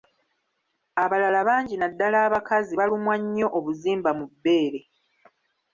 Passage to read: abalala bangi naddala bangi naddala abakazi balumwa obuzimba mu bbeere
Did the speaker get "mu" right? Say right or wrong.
right